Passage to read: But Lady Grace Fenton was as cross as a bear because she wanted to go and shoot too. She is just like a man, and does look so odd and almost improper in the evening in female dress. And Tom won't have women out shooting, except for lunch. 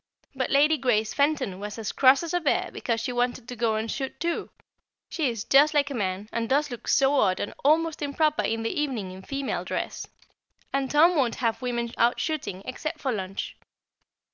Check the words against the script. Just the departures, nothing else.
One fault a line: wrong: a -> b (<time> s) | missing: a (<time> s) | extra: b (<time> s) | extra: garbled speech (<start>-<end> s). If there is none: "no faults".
no faults